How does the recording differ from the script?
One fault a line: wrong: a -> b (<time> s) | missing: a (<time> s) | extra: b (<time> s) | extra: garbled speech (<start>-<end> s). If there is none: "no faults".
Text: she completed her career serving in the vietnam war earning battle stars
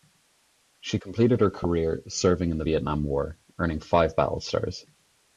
extra: five (3.8 s)